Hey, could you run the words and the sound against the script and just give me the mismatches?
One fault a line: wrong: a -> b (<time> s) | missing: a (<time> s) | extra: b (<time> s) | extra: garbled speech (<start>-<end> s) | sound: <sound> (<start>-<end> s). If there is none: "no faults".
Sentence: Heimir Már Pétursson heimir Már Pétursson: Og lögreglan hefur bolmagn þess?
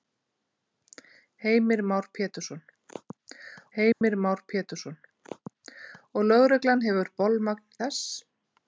sound: dropout (3.9-4.0 s)